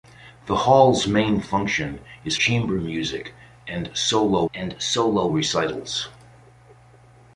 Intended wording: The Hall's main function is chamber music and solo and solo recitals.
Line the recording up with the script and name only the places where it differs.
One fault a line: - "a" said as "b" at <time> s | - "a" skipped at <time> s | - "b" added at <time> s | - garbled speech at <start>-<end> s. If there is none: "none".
none